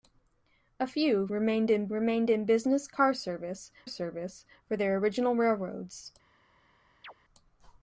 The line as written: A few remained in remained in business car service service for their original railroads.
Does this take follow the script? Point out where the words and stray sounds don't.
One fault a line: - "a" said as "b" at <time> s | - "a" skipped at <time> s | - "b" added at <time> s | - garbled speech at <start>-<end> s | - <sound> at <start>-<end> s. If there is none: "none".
- chirp at 7.0-7.1 s